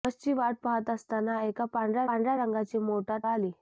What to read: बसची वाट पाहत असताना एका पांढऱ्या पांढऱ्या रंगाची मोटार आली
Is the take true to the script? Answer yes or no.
yes